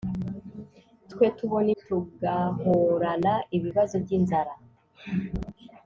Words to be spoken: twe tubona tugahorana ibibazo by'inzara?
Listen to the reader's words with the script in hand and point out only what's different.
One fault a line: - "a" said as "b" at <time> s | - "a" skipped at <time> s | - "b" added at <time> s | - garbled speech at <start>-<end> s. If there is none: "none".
none